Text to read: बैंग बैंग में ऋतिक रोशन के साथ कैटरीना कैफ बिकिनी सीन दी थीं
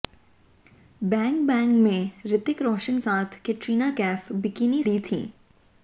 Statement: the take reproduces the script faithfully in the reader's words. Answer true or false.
false